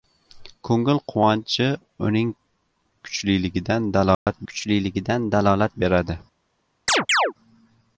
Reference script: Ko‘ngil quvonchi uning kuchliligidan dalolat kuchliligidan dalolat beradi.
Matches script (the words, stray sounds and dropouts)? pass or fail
fail